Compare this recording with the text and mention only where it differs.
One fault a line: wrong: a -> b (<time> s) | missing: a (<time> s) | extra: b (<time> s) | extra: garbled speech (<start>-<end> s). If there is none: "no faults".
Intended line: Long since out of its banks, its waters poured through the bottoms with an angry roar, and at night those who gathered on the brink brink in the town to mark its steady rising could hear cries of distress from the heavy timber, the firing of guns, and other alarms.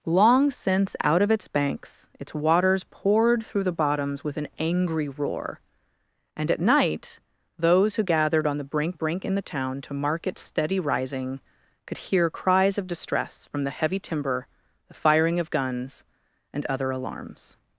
no faults